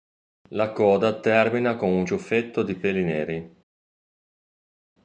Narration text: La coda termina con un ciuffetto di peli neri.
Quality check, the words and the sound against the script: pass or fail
pass